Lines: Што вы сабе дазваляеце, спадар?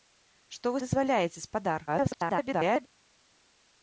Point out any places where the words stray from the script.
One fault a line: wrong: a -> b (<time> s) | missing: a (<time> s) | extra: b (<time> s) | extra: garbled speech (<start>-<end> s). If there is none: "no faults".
missing: сабе (0.8 s)
extra: garbled speech (1.9-2.9 s)